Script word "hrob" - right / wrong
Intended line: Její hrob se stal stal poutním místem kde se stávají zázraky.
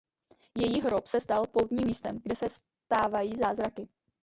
right